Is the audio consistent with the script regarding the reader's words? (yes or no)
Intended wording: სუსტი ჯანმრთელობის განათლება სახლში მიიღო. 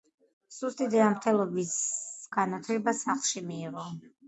yes